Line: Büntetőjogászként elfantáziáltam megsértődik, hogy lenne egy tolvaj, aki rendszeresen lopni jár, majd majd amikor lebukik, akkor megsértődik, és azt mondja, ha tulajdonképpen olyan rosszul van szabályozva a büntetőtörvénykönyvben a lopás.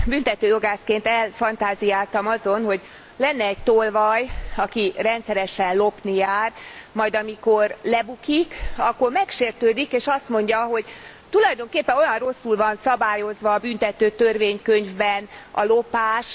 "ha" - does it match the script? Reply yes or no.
no